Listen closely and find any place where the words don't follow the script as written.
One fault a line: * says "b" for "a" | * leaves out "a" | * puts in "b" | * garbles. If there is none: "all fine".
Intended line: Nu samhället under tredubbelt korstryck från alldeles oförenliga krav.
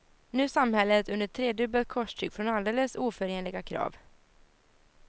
all fine